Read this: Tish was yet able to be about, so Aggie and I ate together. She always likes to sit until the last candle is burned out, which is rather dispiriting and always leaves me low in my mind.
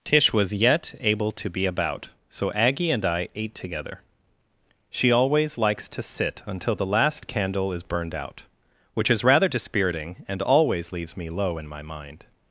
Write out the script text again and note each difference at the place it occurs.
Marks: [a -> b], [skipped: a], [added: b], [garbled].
Tish was yet able to be about, so Aggie and I ate together. She always likes to sit until the last candle is burned out, which is rather dispiriting and always leaves me low in my mind.